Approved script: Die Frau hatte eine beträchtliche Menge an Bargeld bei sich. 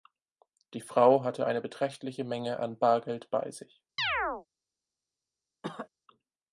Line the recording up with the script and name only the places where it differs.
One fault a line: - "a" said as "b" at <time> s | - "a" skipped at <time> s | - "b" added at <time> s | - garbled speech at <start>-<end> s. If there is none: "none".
none